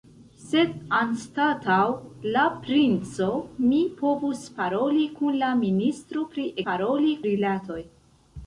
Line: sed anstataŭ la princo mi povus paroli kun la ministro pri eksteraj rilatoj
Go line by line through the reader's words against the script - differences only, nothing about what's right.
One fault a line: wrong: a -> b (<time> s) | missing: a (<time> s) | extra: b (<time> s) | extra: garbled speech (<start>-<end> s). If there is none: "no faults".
wrong: eksteraj -> paroli (6.7 s)